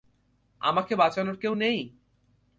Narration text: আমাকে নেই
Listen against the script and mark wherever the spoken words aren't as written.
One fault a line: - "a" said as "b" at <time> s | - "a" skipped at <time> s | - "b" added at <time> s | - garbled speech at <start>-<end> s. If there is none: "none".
- "বাঁচানোর কেউ" added at 0.9 s